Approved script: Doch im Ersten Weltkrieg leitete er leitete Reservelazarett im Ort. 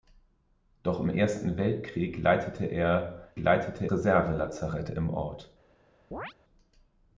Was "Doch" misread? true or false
false